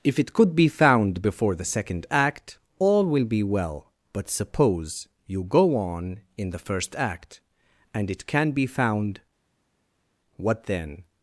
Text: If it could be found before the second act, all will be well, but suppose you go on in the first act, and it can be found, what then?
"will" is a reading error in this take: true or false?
false